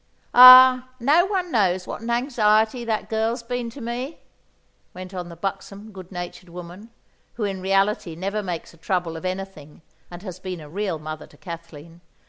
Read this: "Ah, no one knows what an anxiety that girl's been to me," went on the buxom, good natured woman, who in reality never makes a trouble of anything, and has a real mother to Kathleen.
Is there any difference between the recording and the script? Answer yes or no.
yes